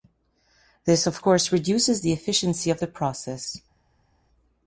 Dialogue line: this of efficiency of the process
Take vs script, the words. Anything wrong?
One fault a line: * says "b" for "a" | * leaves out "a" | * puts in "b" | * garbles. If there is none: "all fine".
* puts in "course reduces the"